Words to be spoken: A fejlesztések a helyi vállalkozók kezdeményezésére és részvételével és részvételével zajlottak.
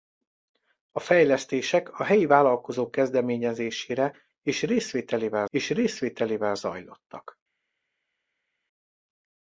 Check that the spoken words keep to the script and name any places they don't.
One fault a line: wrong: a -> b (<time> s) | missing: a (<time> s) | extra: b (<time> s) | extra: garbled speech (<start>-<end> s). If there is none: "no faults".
no faults